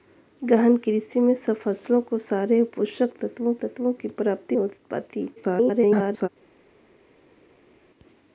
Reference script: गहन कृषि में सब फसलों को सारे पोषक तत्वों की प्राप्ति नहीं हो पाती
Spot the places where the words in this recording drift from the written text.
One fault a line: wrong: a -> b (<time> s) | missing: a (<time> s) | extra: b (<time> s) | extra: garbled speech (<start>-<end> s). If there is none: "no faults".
extra: तत्वों (3.6 s)
missing: नहीं (4.6 s)
extra: garbled speech (5.4-6.3 s)